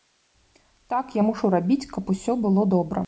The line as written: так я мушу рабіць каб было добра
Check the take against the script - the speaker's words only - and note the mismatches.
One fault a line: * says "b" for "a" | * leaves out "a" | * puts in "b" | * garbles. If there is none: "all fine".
* puts in "усё"